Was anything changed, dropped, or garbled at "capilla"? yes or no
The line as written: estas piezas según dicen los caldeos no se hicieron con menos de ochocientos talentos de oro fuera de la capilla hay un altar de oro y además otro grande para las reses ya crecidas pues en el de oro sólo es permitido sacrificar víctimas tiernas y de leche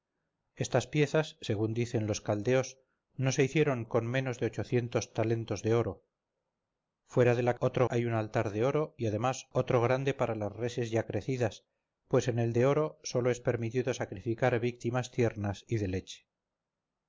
yes